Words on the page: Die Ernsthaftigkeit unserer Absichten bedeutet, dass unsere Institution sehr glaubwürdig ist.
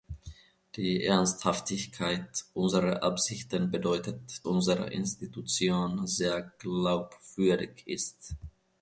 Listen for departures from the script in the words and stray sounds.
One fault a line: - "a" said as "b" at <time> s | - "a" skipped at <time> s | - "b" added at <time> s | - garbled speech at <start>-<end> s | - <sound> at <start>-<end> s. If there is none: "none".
- "dass" skipped at 4.5 s